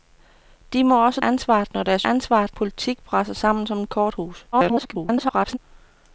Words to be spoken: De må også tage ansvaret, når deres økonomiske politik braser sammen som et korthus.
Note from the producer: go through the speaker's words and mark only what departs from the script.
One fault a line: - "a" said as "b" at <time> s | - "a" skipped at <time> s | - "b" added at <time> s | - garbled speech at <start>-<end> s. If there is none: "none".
- "tage" skipped at 1.2 s
- "økonomiske" said as "ansvaret" at 2.0 s
- garbled speech at 4.5-5.6 s